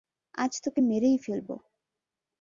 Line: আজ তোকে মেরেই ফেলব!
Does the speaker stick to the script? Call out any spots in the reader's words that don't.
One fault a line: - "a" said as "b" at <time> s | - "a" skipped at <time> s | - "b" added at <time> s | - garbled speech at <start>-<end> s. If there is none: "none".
none